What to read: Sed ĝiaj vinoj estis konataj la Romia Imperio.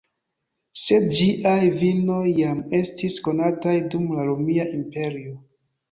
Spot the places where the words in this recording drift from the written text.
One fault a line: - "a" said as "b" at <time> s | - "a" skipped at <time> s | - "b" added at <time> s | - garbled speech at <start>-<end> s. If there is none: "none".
- "jam" added at 2.4 s
- "dum" added at 4.0 s